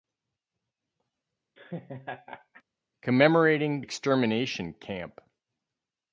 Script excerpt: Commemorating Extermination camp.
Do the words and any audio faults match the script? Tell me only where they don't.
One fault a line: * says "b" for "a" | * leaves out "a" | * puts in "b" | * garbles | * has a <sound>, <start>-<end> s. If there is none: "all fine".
* has a laugh, 1.6-2.6 s